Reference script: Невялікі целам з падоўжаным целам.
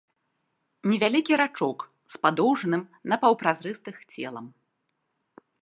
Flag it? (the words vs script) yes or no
yes